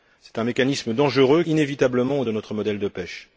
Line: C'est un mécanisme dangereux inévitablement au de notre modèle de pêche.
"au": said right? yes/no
yes